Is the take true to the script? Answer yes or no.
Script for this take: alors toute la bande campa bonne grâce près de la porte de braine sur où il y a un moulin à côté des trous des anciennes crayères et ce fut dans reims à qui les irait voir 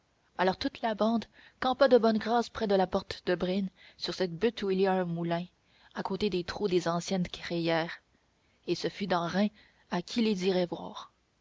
no